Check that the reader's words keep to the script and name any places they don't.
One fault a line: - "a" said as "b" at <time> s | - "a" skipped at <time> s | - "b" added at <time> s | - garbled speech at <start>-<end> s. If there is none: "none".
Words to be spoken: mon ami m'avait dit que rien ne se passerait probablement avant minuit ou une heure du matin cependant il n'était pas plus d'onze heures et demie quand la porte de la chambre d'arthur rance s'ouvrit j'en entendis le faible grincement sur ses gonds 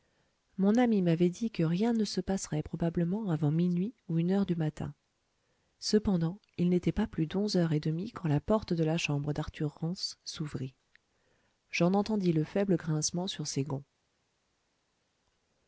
none